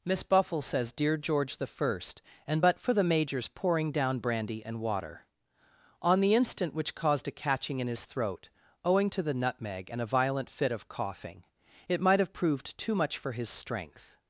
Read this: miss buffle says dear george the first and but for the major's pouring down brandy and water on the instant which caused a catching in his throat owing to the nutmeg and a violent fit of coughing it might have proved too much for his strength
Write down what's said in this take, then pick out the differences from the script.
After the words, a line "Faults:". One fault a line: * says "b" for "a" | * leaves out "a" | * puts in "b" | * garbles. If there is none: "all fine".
miss buffle says dear george the first and but for the major's pouring down brandy and water on the instant which caused a catching in his throat owing to the nutmeg and a violent fit of coughing it might have proved too much for his strength
Faults:
all fine